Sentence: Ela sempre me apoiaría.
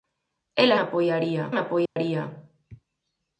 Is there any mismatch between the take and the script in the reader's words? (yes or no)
yes